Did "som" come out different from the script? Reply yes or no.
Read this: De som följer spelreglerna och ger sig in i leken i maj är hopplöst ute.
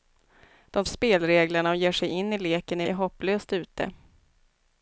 yes